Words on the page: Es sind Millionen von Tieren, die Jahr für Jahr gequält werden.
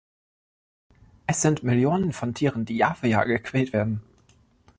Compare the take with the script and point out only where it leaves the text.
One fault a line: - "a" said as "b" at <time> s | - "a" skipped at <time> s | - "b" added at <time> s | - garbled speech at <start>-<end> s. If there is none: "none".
none